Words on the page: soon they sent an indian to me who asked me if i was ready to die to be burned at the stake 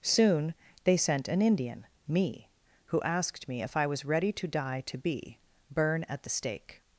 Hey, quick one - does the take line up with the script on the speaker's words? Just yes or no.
no